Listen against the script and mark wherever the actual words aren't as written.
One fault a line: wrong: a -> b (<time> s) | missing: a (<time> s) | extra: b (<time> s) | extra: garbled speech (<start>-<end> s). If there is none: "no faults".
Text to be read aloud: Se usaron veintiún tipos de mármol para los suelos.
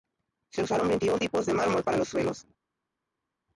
no faults